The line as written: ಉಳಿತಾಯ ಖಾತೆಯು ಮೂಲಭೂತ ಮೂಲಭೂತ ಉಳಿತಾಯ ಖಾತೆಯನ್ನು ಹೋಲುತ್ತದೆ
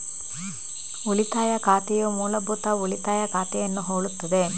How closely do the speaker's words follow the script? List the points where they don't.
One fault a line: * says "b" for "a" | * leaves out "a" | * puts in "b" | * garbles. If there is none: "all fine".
* leaves out "ಮೂಲಭೂತ"